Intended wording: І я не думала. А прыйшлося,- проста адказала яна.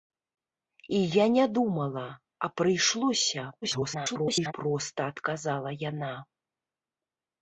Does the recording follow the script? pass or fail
fail